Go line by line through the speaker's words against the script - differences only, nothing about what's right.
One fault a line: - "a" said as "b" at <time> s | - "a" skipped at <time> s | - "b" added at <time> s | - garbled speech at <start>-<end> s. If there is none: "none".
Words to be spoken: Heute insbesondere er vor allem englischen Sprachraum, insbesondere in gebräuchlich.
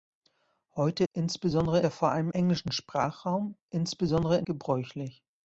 none